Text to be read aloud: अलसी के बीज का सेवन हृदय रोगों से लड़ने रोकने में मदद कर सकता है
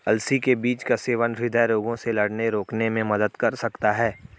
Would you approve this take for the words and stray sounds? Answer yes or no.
yes